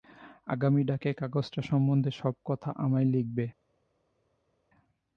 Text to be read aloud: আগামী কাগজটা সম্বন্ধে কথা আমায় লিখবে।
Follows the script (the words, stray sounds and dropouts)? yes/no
no